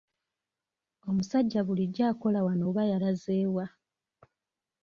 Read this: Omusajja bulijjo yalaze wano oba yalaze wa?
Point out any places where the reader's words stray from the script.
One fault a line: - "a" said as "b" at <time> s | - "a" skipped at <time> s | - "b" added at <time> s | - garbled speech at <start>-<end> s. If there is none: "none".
- "yalaze" said as "akola" at 2.1 s